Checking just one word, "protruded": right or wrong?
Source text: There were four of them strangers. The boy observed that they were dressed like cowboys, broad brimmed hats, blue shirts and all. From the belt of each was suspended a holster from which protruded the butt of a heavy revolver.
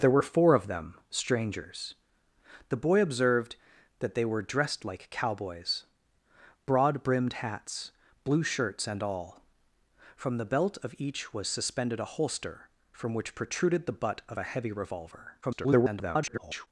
right